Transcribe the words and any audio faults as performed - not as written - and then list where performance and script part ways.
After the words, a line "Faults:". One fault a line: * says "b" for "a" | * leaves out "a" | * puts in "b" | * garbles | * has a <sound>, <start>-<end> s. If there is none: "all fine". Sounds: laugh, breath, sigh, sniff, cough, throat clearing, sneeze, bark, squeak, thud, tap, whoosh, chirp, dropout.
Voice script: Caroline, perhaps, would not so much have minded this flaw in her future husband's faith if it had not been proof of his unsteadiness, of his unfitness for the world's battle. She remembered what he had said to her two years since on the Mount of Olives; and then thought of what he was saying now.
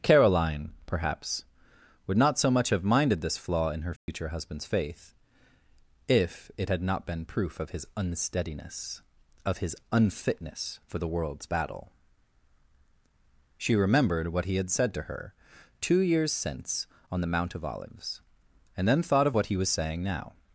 Caroline, perhaps, would not so much have minded this flaw in her future husband's faith if it had not been proof of his unsteadiness, of his unfitness for the world's battle. She remembered what he had said to her two years since on the Mount of Olives; and then thought of what he was saying now.
Faults:
* has a dropout, 4.0-4.1 s